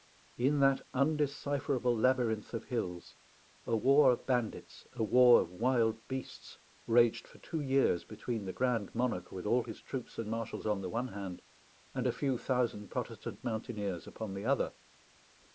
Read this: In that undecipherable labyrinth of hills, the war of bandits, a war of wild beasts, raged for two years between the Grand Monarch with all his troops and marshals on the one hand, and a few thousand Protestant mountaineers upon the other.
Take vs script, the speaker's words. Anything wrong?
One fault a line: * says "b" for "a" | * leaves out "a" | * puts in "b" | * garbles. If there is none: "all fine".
* says "a" for "the"